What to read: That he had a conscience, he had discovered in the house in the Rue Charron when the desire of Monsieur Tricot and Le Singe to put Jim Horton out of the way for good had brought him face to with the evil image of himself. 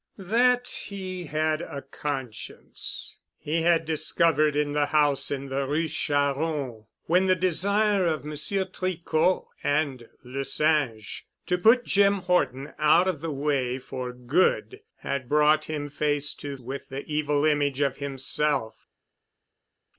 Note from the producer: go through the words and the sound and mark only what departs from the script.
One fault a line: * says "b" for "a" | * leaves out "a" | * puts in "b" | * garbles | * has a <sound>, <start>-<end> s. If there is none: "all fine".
all fine